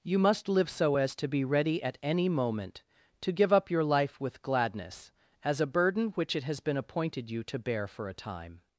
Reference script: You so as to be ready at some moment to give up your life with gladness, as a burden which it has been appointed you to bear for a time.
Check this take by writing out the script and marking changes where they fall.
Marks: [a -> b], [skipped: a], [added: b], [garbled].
You [added: must live] so as to be ready at [some -> any] moment to give up your life with gladness, as a burden which it has been appointed you to bear for a time.